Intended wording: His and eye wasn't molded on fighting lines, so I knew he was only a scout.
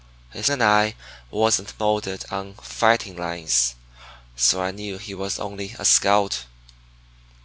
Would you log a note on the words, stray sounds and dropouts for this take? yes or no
no